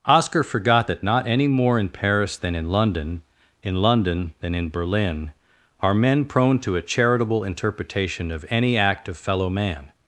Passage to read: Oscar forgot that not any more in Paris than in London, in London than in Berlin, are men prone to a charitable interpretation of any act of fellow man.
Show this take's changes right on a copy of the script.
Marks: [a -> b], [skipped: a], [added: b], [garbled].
Oscar forgot that not any more in Paris than in London, in London than in Berlin, are men prone to a charitable interpretation of any act of fellow man.